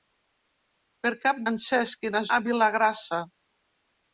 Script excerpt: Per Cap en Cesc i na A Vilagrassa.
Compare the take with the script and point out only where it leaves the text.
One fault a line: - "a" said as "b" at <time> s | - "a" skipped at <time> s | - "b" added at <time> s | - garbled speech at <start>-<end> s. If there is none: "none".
none